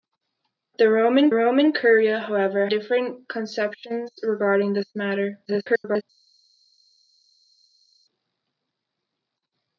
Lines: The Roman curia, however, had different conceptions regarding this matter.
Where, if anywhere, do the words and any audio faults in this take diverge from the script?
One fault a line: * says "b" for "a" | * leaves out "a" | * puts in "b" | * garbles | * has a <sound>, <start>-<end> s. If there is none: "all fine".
* puts in "Roman"
* leaves out "had"
* garbles